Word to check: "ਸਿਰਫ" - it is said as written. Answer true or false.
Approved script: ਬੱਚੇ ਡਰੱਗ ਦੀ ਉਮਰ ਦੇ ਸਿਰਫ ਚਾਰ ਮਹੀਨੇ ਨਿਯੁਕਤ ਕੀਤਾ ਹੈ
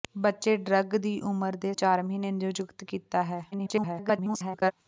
false